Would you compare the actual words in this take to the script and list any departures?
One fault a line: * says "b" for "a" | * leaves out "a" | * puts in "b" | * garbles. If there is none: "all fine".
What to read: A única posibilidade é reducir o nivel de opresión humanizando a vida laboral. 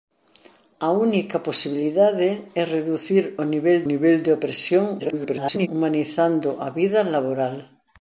* puts in "nivel"
* garbles